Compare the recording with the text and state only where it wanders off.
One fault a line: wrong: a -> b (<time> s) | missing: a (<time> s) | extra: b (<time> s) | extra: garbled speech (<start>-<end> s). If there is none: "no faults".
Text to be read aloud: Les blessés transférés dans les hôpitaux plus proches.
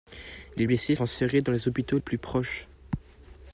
no faults